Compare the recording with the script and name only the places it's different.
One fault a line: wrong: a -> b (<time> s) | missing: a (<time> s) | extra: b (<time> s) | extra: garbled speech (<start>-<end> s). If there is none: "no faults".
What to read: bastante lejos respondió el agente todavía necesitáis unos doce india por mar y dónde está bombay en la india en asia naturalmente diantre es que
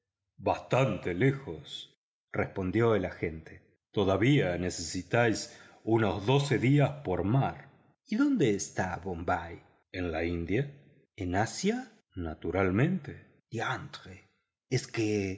wrong: india -> días (6.6 s)